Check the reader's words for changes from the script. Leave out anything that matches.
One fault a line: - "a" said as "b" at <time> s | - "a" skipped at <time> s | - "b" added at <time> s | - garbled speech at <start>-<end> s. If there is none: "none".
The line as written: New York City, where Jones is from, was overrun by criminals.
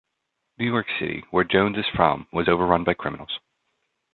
none